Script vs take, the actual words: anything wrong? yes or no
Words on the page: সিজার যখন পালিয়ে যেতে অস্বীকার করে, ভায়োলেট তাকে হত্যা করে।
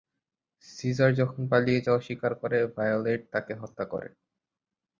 yes